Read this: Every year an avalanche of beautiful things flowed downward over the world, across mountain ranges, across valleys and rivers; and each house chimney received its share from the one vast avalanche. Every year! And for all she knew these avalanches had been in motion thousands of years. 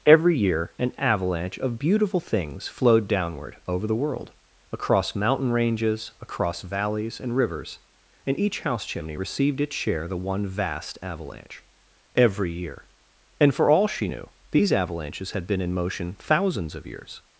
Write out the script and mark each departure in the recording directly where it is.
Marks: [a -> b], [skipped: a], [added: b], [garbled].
Every year an avalanche of beautiful things flowed downward over the world, across mountain ranges, across valleys and rivers; and each house chimney received its share [skipped: from] the one vast avalanche. Every year! And for all she knew these avalanches had been in motion thousands of years.